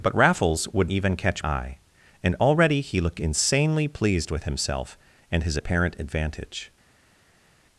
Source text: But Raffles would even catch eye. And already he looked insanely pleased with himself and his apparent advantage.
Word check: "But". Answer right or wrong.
right